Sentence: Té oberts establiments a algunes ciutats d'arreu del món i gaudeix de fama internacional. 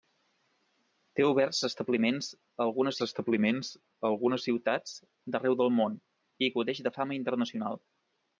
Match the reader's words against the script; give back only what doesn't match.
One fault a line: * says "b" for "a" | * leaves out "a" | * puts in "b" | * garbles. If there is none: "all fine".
* puts in "establiments a algunes"